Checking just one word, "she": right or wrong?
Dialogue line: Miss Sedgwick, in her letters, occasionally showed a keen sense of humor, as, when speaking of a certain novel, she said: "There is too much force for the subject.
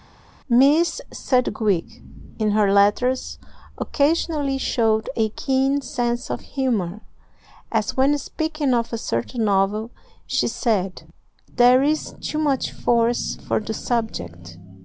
right